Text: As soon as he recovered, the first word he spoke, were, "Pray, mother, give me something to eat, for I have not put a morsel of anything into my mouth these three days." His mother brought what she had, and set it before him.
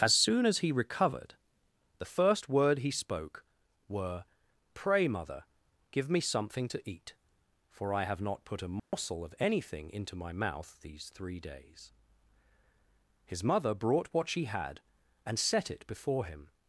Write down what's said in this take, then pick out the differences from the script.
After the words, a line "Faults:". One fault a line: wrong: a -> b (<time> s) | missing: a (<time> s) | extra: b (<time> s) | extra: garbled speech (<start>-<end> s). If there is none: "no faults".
As soon as he recovered, the first word he spoke, were, "Pray, mother, give me something to eat, for I have not put a morsel of anything into my mouth these three days." His mother brought what she had, and set it before him.
Faults:
no faults